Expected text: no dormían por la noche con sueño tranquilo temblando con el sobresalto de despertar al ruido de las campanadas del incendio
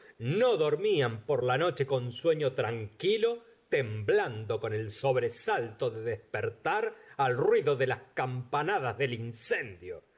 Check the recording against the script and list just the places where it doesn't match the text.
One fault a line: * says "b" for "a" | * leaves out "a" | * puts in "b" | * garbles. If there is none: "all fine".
all fine